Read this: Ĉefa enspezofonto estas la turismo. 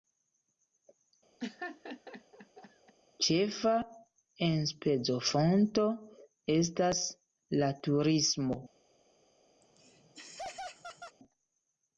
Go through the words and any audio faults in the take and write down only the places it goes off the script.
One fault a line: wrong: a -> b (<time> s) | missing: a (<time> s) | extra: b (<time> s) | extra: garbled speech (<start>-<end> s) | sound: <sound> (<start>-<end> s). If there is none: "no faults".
sound: laugh (1.4-2.9 s)
sound: laugh (9.6-11.2 s)